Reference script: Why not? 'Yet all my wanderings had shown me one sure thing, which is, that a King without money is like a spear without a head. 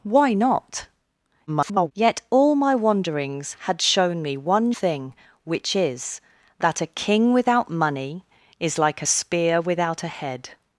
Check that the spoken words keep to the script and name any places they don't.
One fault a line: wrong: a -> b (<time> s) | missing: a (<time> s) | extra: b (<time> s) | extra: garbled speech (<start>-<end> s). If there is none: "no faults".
extra: garbled speech (1.5-1.9 s)
missing: sure (4.7 s)